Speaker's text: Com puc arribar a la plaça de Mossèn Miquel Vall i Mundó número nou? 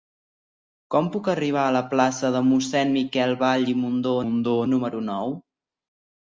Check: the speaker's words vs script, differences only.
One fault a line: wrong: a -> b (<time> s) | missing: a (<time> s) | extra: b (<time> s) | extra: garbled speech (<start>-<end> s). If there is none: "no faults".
extra: Mundó (4.2 s)